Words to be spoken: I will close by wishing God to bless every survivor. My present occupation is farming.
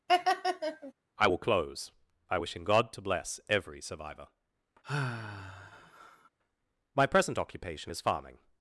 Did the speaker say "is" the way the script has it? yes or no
yes